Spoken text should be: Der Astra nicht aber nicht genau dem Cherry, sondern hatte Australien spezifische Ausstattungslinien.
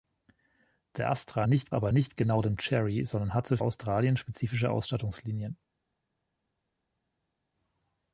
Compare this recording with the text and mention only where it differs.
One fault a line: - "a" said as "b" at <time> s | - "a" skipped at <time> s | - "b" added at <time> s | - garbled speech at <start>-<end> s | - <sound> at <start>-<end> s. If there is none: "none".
none